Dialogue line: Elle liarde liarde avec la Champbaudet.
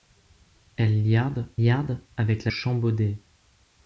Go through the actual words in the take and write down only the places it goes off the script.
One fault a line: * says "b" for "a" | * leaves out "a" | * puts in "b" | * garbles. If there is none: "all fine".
all fine